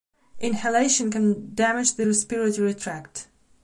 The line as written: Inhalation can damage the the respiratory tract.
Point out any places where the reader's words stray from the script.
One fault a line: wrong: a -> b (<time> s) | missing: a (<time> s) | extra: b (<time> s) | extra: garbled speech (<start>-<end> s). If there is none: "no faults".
missing: the (2.1 s)